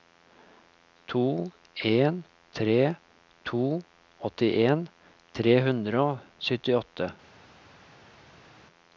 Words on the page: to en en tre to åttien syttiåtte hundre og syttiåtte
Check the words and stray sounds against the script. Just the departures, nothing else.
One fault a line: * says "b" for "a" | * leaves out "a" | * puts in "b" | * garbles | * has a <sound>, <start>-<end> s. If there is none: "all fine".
* leaves out "en"
* says "tre" for "syttiåtte"